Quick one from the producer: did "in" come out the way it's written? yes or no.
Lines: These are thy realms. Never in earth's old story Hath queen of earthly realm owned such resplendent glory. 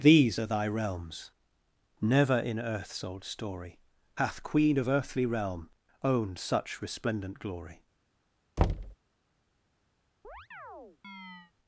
yes